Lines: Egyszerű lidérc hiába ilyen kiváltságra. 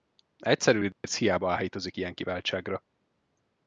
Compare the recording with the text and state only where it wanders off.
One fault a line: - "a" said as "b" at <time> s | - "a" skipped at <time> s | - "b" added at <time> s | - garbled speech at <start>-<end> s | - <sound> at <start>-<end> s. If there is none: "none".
- dropout at 0.9-1.0 s
- "áhítozik" added at 1.5 s